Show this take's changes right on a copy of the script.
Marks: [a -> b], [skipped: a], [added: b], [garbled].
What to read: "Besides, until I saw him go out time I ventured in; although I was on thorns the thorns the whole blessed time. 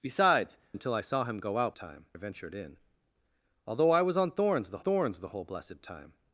"Besides, until I saw him go out time I ventured in; although I was on thorns the thorns the whole blessed time.